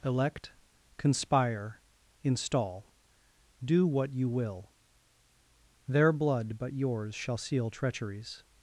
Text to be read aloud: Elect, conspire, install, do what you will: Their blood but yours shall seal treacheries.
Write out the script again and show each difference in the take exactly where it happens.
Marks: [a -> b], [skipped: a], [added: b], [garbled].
Elect, conspire, install, do what you will: Their blood but yours shall seal treacheries.